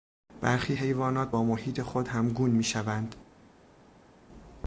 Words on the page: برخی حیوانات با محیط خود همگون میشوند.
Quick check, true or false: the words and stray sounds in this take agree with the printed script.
true